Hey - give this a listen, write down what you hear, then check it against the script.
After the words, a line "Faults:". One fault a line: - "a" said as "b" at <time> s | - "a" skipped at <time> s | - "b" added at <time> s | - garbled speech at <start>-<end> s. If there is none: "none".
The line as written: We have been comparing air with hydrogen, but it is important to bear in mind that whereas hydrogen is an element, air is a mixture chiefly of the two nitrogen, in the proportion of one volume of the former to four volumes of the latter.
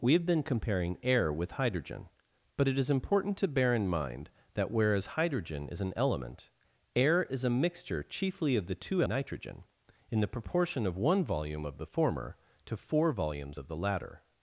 We have been comparing air with hydrogen, but it is important to bear in mind that whereas hydrogen is an element, air is a mixture chiefly of the two nitrogen, in the proportion of one volume of the former to four volumes of the latter.
Faults:
none